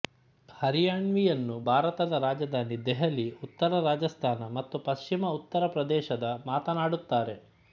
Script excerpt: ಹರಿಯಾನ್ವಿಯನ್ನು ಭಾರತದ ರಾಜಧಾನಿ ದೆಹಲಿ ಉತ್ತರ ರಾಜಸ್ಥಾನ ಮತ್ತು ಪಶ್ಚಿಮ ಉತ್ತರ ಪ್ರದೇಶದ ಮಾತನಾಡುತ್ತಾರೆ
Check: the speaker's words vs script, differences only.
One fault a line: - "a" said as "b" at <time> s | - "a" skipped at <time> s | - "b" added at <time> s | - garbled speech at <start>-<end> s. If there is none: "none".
none